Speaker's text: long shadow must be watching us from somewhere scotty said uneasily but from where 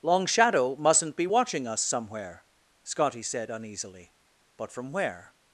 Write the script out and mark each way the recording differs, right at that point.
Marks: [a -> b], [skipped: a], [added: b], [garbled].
long shadow [must -> mustn't] be watching us [skipped: from] somewhere scotty said uneasily but from where